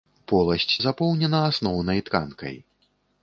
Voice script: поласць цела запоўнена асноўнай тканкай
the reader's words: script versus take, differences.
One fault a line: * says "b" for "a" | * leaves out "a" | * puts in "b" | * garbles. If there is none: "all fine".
* leaves out "цела"